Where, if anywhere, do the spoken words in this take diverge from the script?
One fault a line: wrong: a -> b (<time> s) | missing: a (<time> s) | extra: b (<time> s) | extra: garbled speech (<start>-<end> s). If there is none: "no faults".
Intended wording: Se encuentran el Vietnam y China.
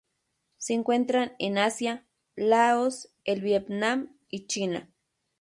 extra: en Asia Laos (1.4 s)